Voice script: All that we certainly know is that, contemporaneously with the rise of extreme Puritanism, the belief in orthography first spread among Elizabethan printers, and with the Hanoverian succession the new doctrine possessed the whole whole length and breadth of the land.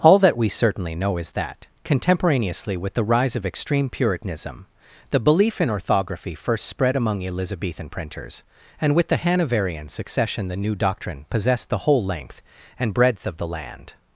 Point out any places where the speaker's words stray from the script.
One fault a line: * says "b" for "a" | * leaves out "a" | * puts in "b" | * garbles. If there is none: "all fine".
* leaves out "whole"